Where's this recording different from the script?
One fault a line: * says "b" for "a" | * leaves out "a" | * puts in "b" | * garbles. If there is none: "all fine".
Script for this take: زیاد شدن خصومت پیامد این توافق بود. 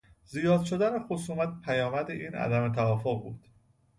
* puts in "عدم"